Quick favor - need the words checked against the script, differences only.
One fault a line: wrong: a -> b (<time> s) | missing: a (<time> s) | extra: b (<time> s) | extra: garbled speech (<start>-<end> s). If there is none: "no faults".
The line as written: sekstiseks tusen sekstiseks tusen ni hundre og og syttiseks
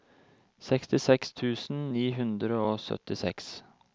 missing: sekstiseks tusen (1.8 s)
missing: og (2.8 s)